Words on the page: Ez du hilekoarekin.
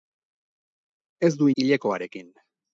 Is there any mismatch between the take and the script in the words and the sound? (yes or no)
no